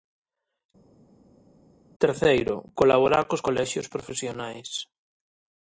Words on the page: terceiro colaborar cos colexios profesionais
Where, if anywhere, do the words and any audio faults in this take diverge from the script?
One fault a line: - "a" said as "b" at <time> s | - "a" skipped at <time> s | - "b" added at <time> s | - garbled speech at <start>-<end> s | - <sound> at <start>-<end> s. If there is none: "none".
none